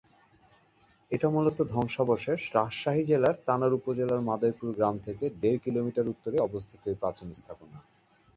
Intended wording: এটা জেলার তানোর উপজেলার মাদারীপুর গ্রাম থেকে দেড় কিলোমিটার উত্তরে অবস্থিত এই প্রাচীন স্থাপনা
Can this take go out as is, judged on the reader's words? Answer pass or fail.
fail